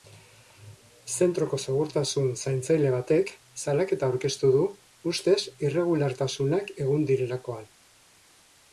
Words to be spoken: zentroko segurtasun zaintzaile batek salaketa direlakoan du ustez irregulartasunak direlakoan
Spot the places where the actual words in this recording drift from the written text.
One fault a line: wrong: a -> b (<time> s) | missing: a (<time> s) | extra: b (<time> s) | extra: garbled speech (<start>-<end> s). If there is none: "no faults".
wrong: direlakoan -> aurkeztu (4.1 s)
extra: egon (6.9 s)